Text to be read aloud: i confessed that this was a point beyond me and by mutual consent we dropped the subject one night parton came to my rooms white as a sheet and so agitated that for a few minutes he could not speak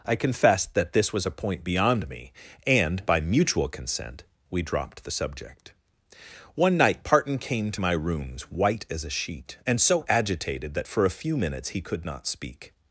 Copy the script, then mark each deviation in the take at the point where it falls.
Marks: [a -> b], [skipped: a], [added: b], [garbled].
i confessed that this was a point beyond me and by mutual consent we dropped the subject one night parton came to my rooms white as a sheet and so agitated that for a few minutes he could not speak